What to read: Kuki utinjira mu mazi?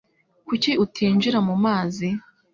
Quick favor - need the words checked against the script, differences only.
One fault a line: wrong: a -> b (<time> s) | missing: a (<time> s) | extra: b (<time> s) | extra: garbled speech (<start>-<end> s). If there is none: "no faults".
no faults